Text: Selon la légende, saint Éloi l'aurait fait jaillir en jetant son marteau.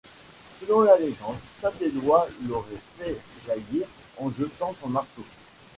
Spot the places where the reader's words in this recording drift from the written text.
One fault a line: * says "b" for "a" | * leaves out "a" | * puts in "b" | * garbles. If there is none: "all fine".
all fine